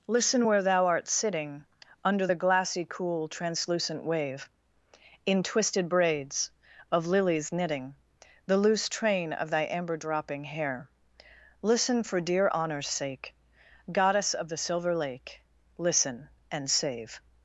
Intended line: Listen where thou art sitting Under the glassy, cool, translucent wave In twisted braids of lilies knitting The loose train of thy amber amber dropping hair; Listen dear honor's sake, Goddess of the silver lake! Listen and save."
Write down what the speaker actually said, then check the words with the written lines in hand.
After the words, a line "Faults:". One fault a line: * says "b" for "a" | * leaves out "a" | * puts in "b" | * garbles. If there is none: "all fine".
Listen where thou art sitting Under the glassy, cool, translucent wave In twisted braids of lilies knitting The loose train of thy amber dropping hair; Listen for dear honor's sake, Goddess of the silver lake! Listen and save."
Faults:
* leaves out "amber"
* puts in "for"